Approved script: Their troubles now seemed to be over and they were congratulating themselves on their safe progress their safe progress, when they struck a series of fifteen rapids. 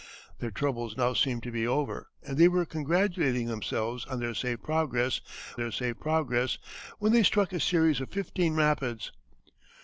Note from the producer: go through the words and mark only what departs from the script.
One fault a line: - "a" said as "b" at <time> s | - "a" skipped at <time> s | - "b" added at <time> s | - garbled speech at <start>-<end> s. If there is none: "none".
none